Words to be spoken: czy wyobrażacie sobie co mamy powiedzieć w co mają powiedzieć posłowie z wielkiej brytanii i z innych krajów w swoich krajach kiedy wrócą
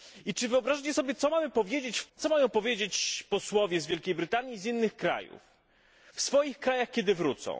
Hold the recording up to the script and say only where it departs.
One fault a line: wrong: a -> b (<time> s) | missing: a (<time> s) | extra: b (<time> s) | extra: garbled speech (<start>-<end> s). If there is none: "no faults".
no faults